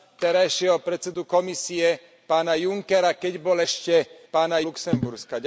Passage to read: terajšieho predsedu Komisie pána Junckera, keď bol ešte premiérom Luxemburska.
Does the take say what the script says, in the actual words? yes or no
no